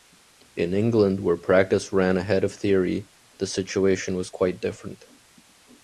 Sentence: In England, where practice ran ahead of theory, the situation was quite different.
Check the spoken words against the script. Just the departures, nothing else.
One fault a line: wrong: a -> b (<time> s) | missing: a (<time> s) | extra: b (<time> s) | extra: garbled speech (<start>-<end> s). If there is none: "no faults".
no faults